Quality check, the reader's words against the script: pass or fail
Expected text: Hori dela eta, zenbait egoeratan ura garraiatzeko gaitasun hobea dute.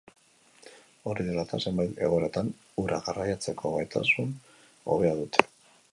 pass